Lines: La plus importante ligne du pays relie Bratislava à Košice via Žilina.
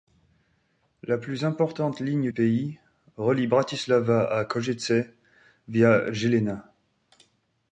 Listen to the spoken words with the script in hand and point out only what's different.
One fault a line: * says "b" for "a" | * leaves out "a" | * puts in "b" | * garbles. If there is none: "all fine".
* leaves out "du"